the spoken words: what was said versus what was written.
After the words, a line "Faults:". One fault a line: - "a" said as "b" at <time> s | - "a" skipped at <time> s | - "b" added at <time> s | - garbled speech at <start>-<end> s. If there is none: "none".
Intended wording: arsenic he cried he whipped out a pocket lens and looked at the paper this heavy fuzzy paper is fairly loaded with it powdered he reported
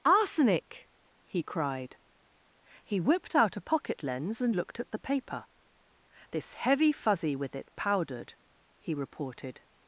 arsenic he cried he whipped out a pocket lens and looked at the paper this heavy fuzzy with it powdered he reported
Faults:
- "paper is fairly loaded" skipped at 7.3 s